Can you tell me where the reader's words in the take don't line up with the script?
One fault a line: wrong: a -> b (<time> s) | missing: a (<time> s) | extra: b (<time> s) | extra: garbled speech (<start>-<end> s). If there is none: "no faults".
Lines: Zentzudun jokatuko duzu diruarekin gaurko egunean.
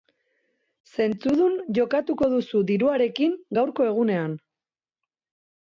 no faults